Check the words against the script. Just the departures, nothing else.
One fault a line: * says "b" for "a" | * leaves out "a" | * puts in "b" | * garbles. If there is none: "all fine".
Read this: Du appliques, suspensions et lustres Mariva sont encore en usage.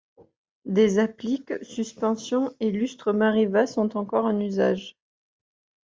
* says "Des" for "Du"